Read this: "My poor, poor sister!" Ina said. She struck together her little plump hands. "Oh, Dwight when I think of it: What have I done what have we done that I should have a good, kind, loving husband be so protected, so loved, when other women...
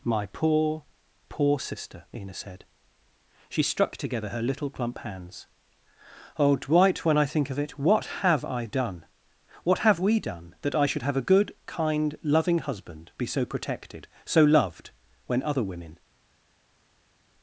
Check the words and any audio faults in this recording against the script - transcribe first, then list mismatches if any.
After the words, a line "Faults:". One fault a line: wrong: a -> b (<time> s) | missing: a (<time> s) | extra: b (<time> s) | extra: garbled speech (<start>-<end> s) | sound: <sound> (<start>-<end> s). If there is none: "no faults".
"My poor, poor sister!" Ina said. She struck together her little plump hands. "Oh, Dwight when I think of it: What have I done what have we done that I should have a good, kind, loving husband be so protected, so loved, when other women...
Faults:
no faults